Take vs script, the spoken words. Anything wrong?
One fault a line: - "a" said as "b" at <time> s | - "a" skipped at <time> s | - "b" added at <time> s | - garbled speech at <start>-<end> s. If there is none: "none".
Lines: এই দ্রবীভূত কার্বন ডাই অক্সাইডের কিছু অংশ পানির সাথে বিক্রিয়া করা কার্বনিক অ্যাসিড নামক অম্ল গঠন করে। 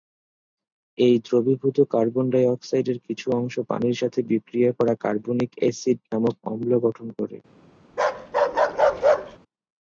none